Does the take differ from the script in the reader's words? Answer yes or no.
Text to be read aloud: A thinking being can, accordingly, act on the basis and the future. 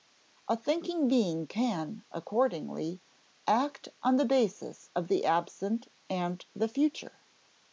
yes